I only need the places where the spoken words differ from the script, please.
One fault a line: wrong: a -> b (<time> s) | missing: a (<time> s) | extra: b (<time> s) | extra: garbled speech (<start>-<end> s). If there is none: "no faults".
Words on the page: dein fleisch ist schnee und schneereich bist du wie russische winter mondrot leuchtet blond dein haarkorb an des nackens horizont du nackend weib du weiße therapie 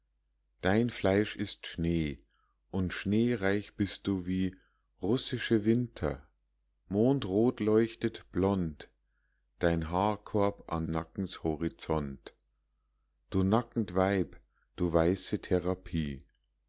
missing: des (10.9 s)